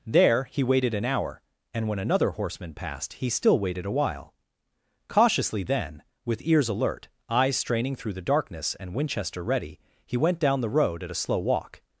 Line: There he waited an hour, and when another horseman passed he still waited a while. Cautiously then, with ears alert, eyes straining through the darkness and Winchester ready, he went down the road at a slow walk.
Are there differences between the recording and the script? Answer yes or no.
no